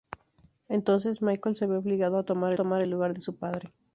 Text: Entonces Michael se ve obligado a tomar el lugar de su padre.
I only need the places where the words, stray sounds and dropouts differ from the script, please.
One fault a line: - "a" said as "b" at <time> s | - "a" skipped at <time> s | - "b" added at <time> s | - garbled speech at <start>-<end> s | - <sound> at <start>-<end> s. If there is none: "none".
- "tomar" added at 2.5 s